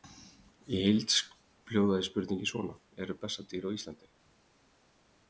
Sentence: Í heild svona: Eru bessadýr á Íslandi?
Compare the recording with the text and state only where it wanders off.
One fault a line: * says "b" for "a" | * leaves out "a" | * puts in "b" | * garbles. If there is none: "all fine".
* puts in "hljóðaði spurningin"